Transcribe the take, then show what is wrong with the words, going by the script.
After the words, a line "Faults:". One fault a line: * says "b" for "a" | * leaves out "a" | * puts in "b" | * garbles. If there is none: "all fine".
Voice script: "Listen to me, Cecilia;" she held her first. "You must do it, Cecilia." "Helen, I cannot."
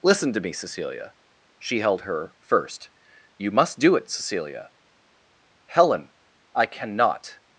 "Listen to me, Cecilia;" she held her first. "You must do it, Cecilia." "Helen, I cannot."
Faults:
all fine